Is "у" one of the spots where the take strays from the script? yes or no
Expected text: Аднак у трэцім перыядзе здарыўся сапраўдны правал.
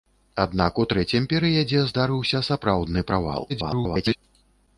no